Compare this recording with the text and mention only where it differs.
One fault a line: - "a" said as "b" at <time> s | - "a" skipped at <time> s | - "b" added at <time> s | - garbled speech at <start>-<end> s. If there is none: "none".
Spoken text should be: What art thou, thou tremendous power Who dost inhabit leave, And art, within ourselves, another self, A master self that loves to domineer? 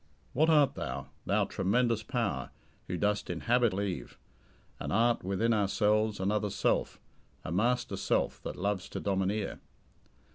none